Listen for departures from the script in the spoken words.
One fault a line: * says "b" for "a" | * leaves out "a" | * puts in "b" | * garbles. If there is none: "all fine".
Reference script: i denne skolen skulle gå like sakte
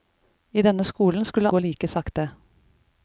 all fine